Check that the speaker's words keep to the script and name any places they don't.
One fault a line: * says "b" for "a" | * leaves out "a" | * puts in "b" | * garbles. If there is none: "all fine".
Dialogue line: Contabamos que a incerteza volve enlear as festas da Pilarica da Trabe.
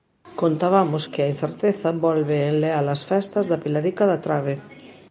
all fine